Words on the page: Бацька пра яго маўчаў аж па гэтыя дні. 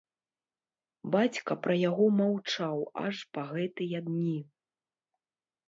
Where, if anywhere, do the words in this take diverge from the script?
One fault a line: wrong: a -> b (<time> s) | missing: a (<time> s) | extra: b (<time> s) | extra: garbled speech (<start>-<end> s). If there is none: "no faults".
no faults